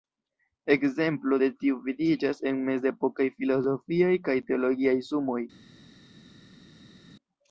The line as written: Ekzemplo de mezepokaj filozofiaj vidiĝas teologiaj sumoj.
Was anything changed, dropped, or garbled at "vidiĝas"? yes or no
yes